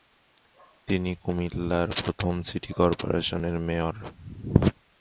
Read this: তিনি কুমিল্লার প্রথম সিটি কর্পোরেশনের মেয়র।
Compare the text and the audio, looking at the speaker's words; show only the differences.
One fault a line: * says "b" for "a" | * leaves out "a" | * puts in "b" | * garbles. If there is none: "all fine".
all fine